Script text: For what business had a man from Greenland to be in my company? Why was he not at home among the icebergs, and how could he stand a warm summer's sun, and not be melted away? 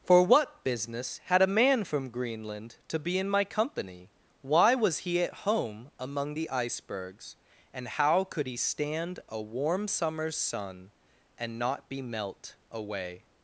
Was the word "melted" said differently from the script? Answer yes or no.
yes